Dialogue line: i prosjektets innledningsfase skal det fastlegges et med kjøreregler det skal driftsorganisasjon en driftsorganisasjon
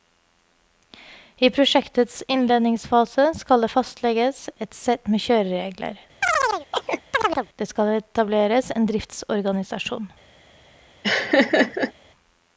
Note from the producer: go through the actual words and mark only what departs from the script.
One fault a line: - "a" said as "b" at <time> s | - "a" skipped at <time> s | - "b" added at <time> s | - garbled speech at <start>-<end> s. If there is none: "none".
- "sett" added at 4.8 s
- "driftsorganisasjon" said as "etableres" at 8.0 s